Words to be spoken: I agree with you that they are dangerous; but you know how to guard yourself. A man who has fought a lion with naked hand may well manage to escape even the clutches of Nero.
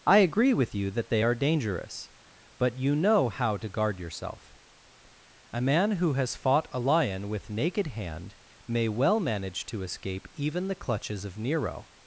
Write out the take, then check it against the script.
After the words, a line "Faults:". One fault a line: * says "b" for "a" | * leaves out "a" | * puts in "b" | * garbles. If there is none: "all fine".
I agree with you that they are dangerous; but you know how to guard yourself. A man who has fought a lion with naked hand may well manage to escape even the clutches of Nero.
Faults:
all fine